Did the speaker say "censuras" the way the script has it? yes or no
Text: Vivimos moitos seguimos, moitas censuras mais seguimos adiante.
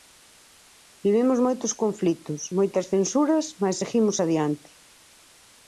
yes